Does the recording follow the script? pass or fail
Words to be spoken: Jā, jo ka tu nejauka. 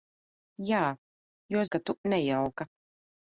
pass